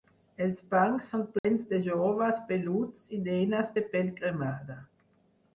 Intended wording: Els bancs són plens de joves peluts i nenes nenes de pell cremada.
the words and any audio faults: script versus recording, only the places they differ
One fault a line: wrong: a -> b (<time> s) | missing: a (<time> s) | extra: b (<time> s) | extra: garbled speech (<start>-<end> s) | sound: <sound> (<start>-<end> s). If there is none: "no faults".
sound: dropout (1.4-1.4 s)
missing: nenes (3.7 s)